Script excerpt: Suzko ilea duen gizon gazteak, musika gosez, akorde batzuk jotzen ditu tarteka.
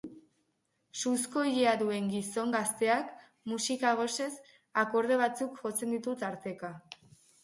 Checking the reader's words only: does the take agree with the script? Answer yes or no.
yes